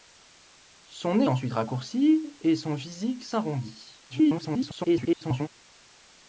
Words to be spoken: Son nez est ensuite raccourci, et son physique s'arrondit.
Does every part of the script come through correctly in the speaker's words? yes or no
no